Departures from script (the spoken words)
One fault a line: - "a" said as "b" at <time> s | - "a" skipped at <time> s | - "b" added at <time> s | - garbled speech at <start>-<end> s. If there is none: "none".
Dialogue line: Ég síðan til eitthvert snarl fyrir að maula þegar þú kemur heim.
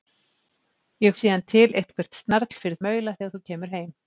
none